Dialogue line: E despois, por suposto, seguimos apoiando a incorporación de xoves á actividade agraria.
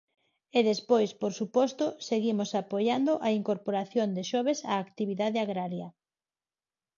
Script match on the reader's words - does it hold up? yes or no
yes